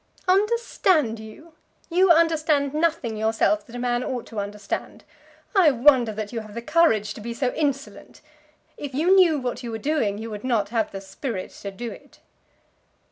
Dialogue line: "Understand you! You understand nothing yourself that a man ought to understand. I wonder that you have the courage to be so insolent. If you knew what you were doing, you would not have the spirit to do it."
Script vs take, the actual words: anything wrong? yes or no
no